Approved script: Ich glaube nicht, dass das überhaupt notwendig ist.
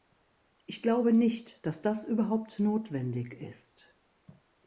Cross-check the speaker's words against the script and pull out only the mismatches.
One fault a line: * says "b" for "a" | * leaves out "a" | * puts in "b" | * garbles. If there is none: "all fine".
all fine